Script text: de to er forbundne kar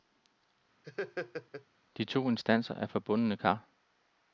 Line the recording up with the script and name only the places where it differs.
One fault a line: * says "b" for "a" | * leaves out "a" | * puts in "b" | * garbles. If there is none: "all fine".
* puts in "instanser"